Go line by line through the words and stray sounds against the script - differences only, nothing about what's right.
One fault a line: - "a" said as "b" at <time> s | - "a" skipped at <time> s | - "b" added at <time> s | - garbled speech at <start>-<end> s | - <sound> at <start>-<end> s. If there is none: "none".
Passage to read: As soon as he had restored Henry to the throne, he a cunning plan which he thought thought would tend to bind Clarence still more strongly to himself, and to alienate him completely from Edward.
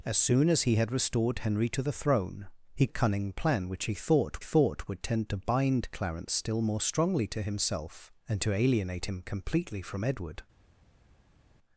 none